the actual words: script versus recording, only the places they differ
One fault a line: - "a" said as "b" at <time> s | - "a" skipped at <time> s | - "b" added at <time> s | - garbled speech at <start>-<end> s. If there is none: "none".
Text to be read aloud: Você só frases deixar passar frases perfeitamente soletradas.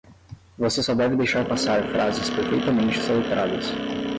- "frases" said as "deve" at 0.9 s